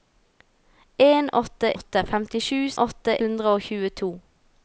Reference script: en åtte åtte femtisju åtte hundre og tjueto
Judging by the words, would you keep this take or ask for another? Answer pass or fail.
pass